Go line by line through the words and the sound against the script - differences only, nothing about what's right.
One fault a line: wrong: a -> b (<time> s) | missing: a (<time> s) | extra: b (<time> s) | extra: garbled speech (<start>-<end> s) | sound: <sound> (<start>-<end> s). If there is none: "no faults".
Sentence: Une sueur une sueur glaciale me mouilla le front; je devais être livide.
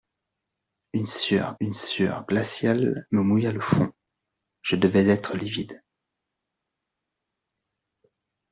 no faults